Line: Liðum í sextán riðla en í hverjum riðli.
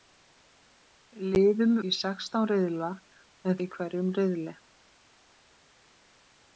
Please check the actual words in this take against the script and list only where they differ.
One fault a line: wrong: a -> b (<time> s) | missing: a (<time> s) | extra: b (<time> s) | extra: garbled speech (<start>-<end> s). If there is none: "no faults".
no faults